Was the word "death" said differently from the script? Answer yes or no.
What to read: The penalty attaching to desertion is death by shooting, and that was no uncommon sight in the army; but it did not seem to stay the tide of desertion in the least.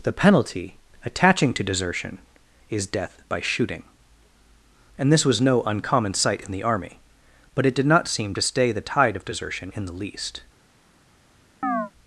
no